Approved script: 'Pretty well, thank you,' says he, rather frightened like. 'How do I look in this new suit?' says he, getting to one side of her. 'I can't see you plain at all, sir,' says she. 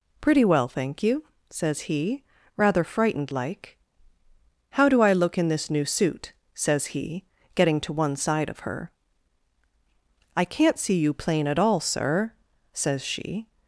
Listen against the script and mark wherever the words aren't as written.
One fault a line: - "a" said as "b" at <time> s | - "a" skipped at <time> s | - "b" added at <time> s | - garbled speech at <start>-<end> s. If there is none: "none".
none